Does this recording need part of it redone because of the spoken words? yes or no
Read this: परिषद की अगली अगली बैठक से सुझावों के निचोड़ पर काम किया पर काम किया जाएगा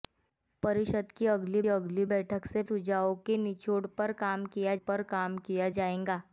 no